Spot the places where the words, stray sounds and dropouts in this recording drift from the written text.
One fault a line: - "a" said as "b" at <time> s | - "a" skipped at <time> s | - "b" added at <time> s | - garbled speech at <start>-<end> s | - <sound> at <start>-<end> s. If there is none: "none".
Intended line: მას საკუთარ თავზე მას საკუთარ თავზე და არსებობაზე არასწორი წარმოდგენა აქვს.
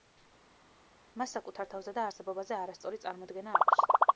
- "მას საკუთარ თავზე" skipped at 1.9 s